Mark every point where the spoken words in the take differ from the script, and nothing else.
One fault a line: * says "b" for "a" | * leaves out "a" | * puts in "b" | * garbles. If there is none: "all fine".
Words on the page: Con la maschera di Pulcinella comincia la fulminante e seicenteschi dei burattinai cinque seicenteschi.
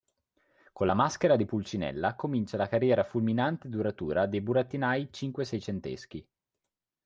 * puts in "carriera"
* says "duratura" for "seicenteschi"